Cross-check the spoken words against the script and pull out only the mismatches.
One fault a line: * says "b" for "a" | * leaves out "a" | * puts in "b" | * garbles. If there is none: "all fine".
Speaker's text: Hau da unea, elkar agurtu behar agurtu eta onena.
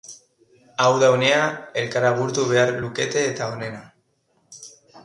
* says "lukete" for "agurtu"